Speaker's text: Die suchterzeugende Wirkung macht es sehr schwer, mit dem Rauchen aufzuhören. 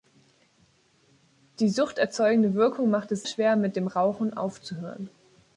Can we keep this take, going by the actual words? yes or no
no